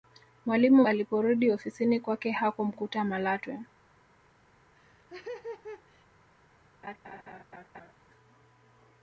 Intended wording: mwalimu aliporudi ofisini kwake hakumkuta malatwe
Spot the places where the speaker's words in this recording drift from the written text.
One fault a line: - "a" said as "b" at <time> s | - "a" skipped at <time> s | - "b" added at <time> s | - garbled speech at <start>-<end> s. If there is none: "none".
none